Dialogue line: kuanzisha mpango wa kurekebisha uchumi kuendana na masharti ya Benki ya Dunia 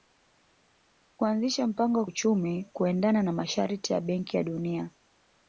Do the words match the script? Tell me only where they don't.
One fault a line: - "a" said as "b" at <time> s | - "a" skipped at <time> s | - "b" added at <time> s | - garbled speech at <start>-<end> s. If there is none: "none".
- "kurekebisha" skipped at 2.0 s